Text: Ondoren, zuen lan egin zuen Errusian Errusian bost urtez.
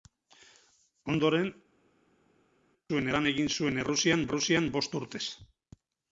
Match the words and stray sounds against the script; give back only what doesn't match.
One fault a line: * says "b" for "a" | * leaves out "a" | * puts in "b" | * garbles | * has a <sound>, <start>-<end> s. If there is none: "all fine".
all fine